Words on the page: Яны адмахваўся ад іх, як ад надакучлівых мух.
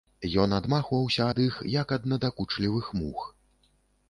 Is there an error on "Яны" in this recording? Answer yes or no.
yes